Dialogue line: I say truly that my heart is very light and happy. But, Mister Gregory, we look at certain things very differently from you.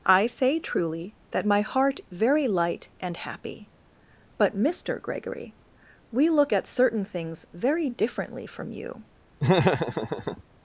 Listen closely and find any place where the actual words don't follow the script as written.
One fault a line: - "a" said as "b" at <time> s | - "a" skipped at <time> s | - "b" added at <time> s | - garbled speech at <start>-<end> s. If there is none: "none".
- "is" skipped at 2.0 s